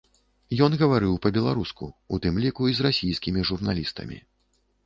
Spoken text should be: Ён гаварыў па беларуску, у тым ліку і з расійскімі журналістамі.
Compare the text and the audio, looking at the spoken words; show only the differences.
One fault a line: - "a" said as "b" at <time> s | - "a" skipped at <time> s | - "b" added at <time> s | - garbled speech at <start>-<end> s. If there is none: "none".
none